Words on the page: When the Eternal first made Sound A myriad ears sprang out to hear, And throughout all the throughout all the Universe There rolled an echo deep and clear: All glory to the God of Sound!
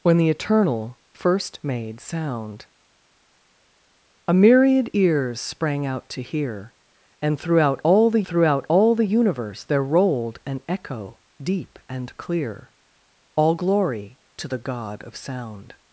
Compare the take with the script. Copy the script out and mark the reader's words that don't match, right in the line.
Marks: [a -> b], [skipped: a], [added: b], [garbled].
When the Eternal first made Sound A myriad ears sprang out to hear, And throughout all the throughout all the Universe There rolled an echo deep and clear: All glory to the God of Sound!